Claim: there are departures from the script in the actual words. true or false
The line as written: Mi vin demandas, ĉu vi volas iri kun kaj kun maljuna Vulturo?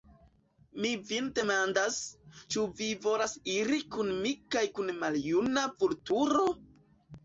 true